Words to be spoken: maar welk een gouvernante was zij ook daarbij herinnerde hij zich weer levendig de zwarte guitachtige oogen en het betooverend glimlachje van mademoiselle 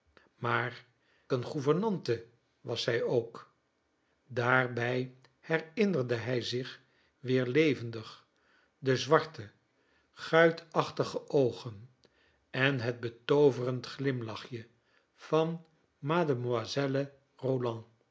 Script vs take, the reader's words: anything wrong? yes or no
yes